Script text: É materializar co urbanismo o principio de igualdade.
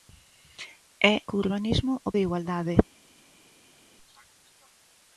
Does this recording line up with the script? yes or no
no